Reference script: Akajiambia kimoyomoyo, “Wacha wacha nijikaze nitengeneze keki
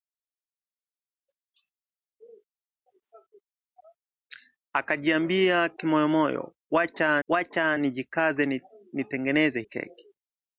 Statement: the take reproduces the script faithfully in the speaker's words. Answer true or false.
true